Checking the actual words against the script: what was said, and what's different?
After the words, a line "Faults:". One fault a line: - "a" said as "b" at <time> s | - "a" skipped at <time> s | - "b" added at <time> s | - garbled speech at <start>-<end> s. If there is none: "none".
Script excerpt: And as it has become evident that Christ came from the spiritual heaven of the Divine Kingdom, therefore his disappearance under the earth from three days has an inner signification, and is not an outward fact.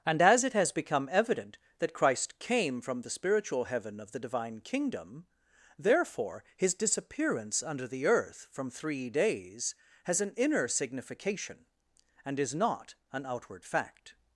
And as it has become evident that Christ came from the spiritual heaven of the Divine Kingdom, therefore his disappearance under the earth from three days has an inner signification, and is not an outward fact.
Faults:
none